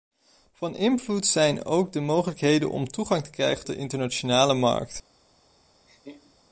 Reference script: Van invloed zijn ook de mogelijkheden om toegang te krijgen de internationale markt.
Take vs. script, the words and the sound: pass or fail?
fail